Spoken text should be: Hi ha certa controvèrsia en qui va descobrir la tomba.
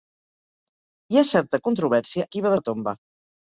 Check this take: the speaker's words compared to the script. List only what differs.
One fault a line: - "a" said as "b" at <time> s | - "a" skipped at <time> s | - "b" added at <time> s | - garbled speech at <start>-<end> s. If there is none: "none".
- "en" skipped at 2.3 s
- "descobrir" skipped at 2.5 s